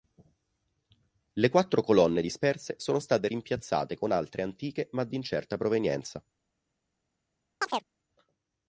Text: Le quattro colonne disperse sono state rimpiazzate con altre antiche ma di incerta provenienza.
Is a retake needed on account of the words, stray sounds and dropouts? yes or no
yes